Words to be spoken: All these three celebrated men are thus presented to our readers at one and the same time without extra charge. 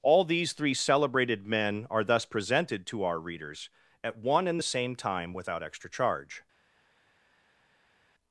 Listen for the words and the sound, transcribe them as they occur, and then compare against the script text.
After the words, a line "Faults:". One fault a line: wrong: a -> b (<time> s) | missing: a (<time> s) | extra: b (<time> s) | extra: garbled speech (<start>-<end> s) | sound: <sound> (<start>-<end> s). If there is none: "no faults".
All these three celebrated men are thus presented to our readers at one and the same time without extra charge.
Faults:
no faults